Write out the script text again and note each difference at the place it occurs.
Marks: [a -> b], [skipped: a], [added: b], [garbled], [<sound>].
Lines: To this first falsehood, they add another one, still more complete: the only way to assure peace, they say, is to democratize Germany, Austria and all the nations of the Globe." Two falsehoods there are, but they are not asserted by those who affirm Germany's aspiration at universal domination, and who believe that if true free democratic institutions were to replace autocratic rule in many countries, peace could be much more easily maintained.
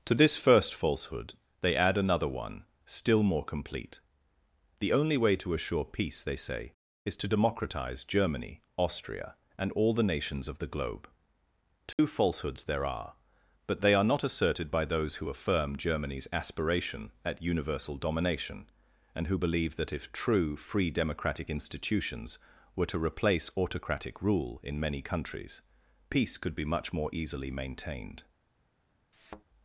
To this first falsehood, they add another one, still more complete: the only way to assure peace, they say, is to democratize Germany, Austria and all the nations of the Globe." Two [dropout] falsehoods there are, but they are not asserted by those who affirm Germany's aspiration at universal domination, and who believe that if true free democratic institutions were to replace autocratic rule in many countries, peace could be much more easily maintained. [thud]